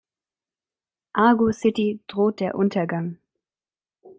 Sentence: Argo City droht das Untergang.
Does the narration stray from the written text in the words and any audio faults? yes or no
yes